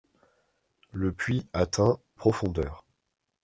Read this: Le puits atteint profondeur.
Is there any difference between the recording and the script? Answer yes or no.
no